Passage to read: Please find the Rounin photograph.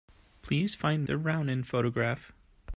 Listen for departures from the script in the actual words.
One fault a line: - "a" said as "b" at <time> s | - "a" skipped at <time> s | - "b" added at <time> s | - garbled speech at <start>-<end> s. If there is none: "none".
none